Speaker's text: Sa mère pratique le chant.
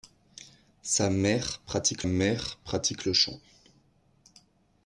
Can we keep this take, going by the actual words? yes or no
no